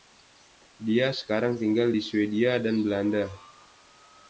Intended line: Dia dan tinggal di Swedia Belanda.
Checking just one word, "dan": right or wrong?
wrong